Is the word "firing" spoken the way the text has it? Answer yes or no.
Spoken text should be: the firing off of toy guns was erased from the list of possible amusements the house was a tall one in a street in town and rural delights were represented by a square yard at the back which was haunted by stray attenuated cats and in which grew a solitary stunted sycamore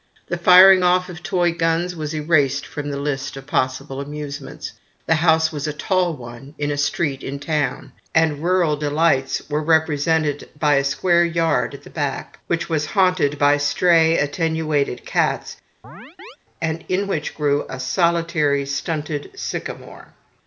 yes